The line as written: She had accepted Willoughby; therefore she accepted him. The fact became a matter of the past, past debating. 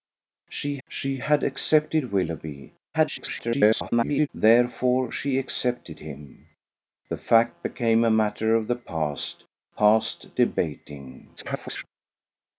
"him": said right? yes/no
yes